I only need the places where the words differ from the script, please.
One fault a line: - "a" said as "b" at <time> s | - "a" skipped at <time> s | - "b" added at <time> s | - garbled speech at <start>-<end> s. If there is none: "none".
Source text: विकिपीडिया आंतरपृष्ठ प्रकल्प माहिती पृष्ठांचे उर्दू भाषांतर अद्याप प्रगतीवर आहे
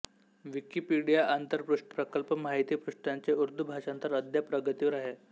none